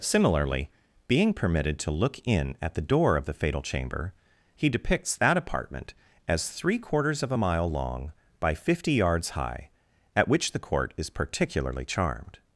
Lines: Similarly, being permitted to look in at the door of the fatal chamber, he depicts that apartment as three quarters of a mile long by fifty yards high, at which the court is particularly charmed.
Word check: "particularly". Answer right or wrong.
right